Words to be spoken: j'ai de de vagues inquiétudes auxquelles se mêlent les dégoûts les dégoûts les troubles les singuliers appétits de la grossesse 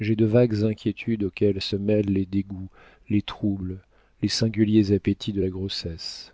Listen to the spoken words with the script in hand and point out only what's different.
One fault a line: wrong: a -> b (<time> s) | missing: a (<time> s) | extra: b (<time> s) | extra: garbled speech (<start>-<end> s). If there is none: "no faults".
missing: de (0.2 s)
missing: dégoûts les (3.2 s)